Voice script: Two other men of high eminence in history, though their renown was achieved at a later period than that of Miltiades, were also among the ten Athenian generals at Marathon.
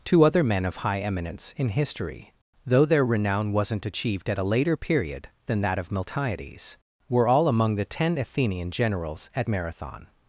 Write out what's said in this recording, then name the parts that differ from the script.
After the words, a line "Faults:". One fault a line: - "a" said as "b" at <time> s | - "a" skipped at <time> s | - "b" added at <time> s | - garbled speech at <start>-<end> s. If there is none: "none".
Two other men of high eminence in history, though their renown wasn't achieved at a later period than that of Miltiades, were all among the ten Athenian generals at Marathon.
Faults:
- "was" said as "wasn't" at 3.5 s
- "also" said as "all" at 7.3 s